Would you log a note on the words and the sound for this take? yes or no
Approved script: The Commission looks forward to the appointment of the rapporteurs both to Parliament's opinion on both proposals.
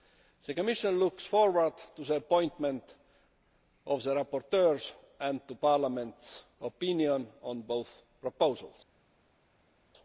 yes